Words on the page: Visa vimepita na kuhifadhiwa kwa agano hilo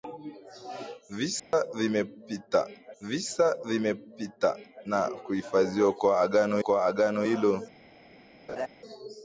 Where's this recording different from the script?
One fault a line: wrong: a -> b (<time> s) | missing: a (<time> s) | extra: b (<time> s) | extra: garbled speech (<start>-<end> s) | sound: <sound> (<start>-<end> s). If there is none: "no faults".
sound: dropout (1.4-1.5 s)
extra: visa vimepita (3.0 s)
extra: kwa agano (6.6 s)
sound: laugh (8.5-8.7 s)